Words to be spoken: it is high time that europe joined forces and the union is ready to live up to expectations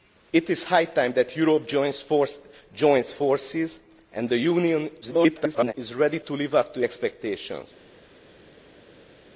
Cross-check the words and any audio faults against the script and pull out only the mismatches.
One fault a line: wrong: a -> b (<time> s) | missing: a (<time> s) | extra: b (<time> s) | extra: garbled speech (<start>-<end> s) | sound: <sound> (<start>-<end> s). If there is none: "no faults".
extra: garbled speech (5.0-5.7 s)